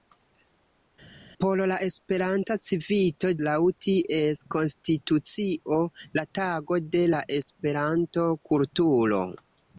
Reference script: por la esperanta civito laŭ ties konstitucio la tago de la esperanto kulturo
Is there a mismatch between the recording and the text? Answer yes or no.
no